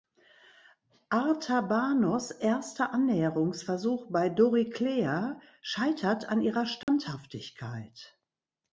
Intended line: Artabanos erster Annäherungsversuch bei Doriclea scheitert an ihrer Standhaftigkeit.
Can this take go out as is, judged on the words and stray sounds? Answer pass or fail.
fail